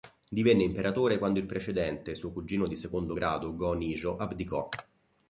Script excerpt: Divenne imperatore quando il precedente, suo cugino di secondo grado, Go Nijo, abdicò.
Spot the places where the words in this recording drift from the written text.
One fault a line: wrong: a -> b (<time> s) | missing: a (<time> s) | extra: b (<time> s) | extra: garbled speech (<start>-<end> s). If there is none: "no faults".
no faults